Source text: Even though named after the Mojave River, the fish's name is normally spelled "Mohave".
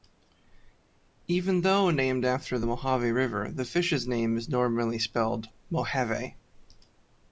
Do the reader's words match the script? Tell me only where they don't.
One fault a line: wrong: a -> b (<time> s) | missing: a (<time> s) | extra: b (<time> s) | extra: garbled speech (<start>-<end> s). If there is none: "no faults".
no faults